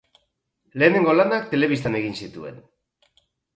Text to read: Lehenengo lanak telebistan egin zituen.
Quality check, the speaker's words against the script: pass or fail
pass